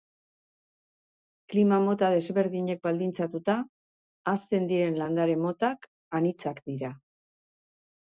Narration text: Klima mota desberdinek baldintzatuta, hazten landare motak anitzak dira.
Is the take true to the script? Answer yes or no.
no